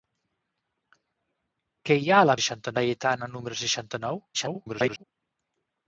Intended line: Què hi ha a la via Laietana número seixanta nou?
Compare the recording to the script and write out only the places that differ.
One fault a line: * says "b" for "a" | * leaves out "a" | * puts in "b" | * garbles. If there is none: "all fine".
* says "seixanta" for "via"
* garbles